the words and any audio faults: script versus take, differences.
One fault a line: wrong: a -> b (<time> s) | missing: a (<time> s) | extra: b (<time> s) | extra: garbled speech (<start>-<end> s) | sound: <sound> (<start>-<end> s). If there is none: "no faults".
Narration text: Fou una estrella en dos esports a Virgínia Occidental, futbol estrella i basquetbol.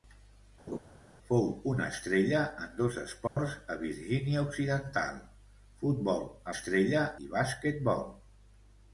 sound: laugh (0.7-0.8 s)
sound: dropout (3.3-3.4 s)